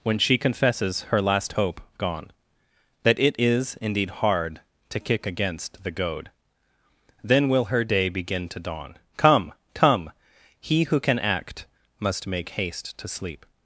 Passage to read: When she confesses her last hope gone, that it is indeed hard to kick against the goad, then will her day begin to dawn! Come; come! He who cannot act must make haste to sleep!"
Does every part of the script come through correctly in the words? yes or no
no